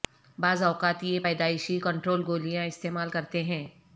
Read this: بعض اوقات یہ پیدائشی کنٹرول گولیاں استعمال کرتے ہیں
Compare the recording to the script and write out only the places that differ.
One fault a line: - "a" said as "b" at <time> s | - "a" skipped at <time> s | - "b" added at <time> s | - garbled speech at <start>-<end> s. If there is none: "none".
none